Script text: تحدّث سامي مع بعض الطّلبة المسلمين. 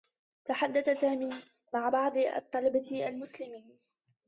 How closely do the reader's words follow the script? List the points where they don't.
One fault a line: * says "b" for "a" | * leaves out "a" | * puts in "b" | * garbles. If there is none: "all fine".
all fine